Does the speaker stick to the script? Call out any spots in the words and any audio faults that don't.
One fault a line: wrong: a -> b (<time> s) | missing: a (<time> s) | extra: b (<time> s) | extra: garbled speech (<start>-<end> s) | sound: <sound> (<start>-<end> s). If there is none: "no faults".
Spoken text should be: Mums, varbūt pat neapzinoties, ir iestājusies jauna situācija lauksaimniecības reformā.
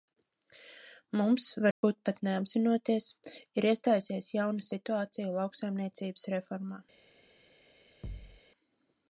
sound: dropout (1.7-1.8 s)
sound: thud (8.0-8.4 s)